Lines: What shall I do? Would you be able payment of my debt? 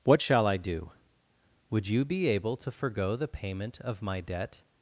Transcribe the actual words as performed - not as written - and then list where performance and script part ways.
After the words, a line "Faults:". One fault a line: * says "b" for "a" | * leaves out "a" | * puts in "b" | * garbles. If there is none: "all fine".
What shall I do? Would you be able to forego the payment of my debt?
Faults:
* puts in "to forego the"